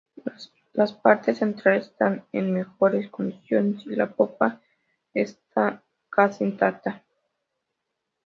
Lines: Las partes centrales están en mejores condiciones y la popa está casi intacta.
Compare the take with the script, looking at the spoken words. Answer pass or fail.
pass